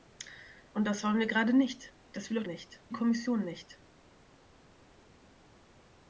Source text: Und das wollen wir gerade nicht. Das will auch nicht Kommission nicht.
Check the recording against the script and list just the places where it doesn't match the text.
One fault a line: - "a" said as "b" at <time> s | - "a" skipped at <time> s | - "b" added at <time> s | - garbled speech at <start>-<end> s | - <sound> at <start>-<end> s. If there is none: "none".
none